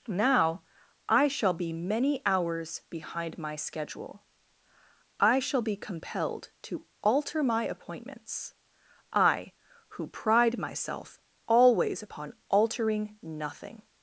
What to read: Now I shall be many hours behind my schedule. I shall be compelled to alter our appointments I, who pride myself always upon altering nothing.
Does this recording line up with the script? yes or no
no